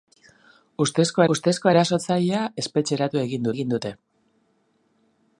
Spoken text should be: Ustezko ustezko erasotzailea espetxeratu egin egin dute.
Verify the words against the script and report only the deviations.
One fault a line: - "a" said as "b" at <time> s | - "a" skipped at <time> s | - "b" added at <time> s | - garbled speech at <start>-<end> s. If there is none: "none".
none